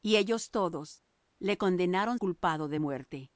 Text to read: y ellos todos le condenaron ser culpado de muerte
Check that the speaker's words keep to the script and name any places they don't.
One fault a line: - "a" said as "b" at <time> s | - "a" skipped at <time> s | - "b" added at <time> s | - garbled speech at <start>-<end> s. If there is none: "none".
- "ser" skipped at 2.2 s